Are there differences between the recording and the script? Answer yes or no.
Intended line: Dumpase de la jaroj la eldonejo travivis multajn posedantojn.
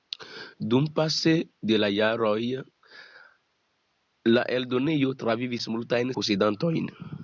no